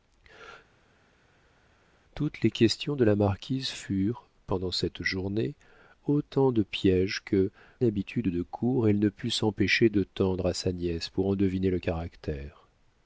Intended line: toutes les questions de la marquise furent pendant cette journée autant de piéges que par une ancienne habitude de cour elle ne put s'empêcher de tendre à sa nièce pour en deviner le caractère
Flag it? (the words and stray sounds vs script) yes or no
yes